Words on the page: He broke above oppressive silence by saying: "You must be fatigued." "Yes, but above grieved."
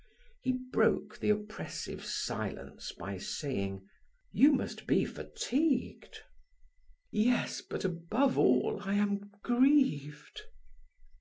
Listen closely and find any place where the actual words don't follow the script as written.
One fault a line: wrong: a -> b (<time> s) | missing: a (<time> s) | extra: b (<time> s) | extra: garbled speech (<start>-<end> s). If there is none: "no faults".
wrong: above -> the (1.2 s)
extra: all I am (8.4 s)